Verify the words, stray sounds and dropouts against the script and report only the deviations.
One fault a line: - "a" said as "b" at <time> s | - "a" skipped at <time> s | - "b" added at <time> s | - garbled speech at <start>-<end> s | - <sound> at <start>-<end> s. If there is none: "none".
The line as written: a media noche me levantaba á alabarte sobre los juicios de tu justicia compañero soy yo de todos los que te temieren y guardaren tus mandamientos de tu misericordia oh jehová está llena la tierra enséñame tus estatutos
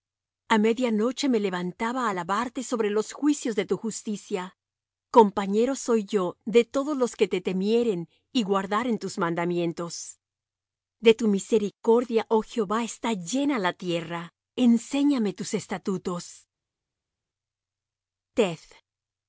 none